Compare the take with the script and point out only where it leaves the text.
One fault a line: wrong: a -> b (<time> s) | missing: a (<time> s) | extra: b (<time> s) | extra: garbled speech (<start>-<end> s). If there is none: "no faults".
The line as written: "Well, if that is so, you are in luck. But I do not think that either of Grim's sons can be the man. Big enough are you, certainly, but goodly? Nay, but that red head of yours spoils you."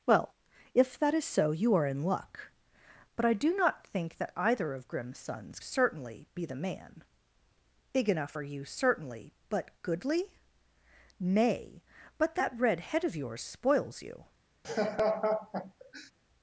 wrong: can -> certainly (5.6 s)